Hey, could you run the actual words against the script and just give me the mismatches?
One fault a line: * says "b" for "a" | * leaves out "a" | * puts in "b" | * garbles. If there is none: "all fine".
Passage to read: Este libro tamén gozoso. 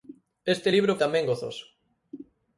all fine